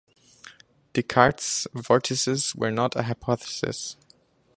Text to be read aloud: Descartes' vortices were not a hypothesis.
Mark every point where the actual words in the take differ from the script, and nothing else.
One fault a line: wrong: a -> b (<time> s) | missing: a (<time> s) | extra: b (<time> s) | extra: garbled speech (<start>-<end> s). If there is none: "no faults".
no faults